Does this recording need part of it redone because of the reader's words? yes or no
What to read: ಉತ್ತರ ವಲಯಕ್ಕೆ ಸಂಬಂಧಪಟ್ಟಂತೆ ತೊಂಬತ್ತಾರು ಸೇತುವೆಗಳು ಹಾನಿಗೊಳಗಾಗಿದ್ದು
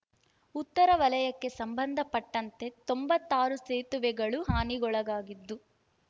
no